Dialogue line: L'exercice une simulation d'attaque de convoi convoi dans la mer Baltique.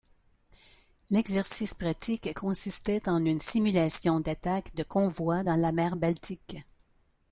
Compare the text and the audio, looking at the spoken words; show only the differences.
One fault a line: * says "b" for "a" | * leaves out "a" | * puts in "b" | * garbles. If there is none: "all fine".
* puts in "pratique consistait en"
* leaves out "convoi"